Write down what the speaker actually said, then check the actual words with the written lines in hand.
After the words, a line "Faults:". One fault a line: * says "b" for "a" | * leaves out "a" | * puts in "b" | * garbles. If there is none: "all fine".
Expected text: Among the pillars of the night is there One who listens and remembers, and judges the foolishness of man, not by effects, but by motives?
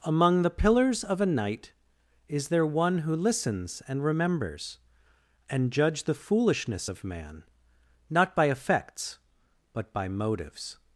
Among the pillars of a night is there One who listens and remembers, and judge the foolishness of man, not by effects, but by motives?
Faults:
* says "a" for "the"
* says "judge" for "judges"